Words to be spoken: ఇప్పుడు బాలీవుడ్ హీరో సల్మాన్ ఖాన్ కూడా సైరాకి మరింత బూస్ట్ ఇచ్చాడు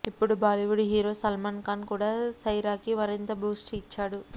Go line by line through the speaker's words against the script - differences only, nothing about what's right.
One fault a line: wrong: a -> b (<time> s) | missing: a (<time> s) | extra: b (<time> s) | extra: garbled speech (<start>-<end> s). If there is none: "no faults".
no faults